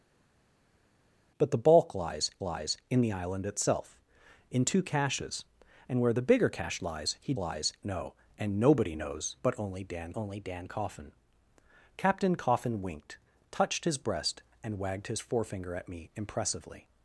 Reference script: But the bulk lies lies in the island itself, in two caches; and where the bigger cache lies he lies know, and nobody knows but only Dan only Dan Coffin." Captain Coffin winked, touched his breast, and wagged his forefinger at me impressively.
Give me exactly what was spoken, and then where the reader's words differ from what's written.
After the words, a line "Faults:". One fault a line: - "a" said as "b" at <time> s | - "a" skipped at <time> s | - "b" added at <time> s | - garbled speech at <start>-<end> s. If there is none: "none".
But the bulk lies lies in the island itself, in two caches; and where the bigger cache lies he lies know, and nobody knows but only Dan only Dan Coffin." Captain Coffin winked, touched his breast, and wagged his forefinger at me impressively.
Faults:
none